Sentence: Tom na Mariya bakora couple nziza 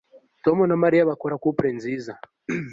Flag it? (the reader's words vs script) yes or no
no